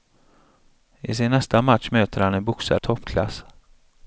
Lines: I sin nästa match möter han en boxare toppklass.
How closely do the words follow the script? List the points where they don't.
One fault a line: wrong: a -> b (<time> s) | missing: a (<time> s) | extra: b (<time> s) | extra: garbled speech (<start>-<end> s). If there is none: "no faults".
no faults